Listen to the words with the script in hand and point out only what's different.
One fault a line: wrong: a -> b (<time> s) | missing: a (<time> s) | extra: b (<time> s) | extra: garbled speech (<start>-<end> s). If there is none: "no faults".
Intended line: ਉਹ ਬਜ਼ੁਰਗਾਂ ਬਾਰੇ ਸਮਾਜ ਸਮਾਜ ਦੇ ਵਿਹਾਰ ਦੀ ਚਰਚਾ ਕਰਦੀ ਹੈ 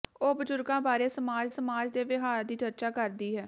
no faults